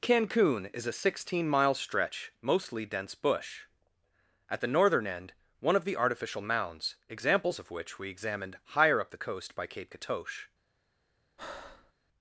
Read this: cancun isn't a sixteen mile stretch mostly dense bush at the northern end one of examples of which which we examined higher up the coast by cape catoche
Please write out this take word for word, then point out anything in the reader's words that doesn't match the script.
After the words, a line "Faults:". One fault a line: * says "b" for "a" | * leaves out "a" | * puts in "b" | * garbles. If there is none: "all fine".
cancun is a sixteen mile stretch mostly dense bush at the northern end one of the artificial mounds examples of which we examined higher up the coast by cape catoche
Faults:
* says "is" for "isn't"
* puts in "the artificial mounds"
* leaves out "which"